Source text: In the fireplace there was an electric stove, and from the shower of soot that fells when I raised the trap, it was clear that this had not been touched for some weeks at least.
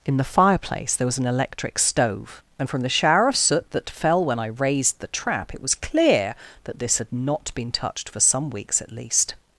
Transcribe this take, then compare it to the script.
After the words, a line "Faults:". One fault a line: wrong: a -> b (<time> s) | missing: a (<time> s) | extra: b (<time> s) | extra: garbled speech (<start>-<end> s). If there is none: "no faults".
In the fireplace there was an electric stove, and from the shower of soot that fell when I raised the trap, it was clear that this had not been touched for some weeks at least.
Faults:
wrong: fells -> fell (3.9 s)